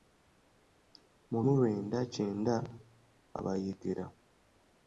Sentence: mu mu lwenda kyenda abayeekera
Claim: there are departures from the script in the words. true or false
false